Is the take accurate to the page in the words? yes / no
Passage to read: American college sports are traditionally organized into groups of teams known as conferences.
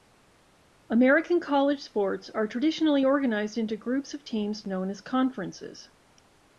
yes